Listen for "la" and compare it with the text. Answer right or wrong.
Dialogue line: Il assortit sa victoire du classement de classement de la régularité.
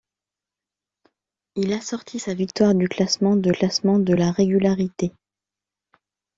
right